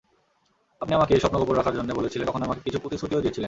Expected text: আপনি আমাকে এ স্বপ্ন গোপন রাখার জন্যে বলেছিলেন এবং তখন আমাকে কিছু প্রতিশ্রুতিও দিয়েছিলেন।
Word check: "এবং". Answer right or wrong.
wrong